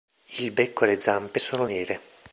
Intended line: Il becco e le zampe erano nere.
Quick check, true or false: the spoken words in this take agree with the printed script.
false